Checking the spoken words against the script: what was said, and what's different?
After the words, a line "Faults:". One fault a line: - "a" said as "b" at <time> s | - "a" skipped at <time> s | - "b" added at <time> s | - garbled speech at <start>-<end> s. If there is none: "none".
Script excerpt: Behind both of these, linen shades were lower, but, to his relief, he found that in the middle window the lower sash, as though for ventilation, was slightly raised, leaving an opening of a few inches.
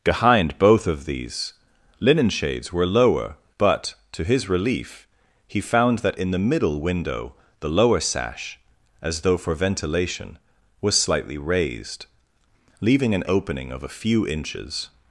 Behind both of these, linen shades were lower, but, to his relief, he found that in the middle window the lower sash, as though for ventilation, was slightly raised, leaving an opening of a few inches.
Faults:
none